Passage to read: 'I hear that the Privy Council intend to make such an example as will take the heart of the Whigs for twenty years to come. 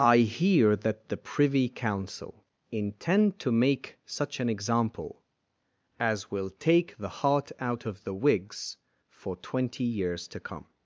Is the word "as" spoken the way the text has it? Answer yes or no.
yes